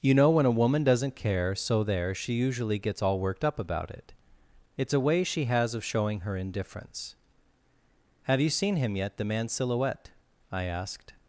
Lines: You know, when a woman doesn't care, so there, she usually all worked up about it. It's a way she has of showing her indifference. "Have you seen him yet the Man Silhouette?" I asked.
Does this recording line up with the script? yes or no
no